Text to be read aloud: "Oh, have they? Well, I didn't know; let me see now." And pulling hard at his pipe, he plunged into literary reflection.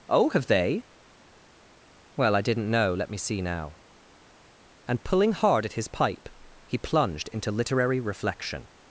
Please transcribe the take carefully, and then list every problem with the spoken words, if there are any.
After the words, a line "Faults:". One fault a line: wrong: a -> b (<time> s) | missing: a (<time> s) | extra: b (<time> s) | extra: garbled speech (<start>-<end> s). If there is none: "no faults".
"Oh, have they? Well, I didn't know; let me see now." And pulling hard at his pipe, he plunged into literary reflection.
Faults:
no faults